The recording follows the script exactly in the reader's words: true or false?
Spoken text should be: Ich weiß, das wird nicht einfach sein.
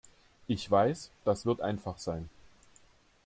false